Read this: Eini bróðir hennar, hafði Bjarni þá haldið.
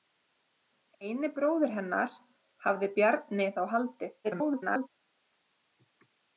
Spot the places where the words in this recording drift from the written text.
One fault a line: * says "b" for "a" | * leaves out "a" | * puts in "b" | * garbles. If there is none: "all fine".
* garbles